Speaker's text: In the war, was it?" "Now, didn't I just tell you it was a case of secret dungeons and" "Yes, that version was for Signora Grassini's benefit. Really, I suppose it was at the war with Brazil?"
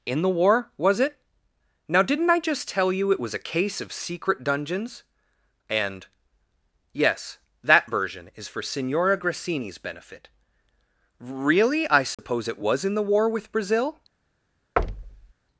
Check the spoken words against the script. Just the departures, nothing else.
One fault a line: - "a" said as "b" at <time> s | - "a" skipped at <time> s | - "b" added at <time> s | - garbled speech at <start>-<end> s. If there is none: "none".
- "was" said as "is" at 8.3 s
- "at" said as "in" at 12.8 s